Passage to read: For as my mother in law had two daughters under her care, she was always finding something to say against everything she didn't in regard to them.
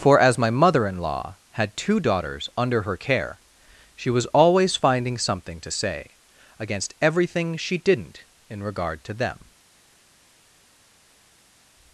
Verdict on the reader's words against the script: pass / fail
pass